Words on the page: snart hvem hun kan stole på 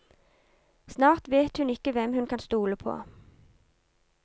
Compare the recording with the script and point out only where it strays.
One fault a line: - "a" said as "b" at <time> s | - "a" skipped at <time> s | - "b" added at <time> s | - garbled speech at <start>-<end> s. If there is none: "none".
- "vet hun ikke" added at 1.3 s